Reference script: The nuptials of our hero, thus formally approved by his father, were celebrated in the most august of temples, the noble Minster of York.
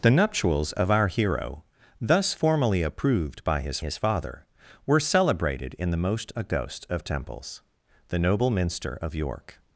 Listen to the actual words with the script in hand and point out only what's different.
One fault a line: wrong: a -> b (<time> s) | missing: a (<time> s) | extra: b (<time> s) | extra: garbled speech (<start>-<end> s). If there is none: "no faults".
extra: his (3.8 s)